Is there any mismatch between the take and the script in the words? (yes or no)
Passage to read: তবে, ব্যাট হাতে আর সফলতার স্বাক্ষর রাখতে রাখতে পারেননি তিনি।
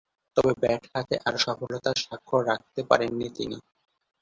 yes